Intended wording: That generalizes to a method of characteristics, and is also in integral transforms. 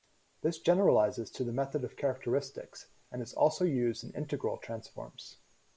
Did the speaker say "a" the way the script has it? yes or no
no